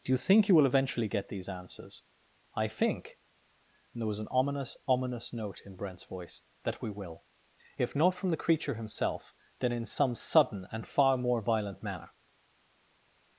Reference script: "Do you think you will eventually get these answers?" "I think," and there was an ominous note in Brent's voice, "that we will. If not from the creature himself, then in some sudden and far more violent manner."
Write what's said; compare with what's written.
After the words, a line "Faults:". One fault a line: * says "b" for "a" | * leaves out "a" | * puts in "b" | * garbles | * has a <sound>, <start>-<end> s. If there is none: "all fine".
"Do you think you will eventually get these answers?" "I think," and there was an ominous ominous note in Brent's voice, "that we will. If not from the creature himself, then in some sudden and far more violent manner."
Faults:
* puts in "ominous"